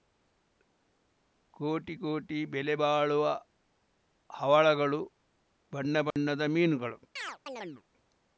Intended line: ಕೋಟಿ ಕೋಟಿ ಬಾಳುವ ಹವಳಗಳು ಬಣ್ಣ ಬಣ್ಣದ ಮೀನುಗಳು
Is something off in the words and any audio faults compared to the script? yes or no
yes